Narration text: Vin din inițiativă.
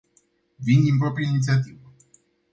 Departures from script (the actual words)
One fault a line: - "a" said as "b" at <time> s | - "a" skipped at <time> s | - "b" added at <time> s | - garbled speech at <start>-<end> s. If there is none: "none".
- "proprie" added at 1.0 s